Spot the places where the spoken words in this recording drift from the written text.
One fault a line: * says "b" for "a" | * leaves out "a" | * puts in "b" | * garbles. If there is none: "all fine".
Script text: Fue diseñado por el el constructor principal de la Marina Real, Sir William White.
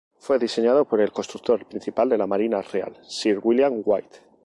* leaves out "el"